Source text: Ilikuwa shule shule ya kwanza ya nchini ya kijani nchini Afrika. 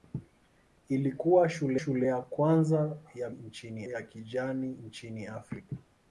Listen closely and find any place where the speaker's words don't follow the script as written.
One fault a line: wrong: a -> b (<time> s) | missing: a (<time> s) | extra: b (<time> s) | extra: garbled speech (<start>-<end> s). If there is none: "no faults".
no faults